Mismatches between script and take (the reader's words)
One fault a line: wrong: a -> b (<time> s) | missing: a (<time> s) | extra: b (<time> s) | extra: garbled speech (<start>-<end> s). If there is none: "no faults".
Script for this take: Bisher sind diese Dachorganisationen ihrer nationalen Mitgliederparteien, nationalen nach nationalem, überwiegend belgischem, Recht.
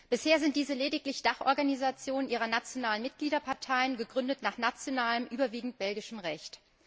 extra: lediglich (0.7 s)
wrong: nationalen -> gegründet (4.0 s)